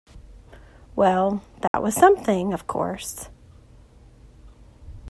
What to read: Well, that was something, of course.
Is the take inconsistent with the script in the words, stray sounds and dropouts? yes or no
yes